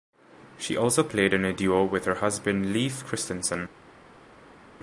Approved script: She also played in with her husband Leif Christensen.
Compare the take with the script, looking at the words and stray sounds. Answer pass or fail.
fail